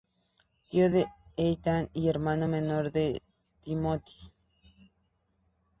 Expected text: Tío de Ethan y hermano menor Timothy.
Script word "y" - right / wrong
right